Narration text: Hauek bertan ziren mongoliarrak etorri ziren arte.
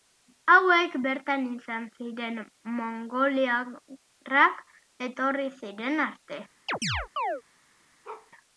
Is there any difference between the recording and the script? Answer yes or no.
yes